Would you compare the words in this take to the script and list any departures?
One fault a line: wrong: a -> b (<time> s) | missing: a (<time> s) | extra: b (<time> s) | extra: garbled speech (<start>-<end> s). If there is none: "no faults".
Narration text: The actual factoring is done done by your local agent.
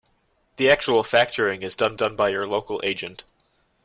no faults